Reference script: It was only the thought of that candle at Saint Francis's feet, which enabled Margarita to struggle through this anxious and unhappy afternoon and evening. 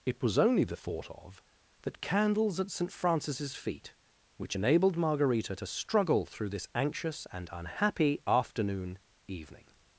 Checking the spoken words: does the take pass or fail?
fail